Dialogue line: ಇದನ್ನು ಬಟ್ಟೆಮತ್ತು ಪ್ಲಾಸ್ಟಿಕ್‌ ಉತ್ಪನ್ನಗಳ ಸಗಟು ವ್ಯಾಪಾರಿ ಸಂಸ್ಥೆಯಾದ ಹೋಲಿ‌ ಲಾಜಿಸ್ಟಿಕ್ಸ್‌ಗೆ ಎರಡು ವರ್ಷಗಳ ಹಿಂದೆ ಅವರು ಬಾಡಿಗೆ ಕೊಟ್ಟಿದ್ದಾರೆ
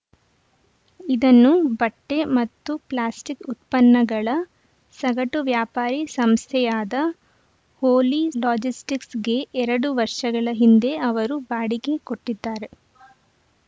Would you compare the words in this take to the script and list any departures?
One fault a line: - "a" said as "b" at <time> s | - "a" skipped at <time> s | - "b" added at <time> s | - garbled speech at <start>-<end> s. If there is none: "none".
none